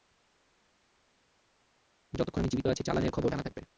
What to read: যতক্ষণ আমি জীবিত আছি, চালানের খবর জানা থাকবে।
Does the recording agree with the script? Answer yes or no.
yes